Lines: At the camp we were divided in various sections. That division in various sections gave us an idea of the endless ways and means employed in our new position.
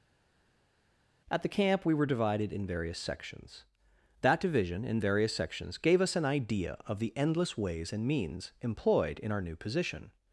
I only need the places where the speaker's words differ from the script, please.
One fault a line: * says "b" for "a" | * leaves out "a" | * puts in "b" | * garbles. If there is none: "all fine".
all fine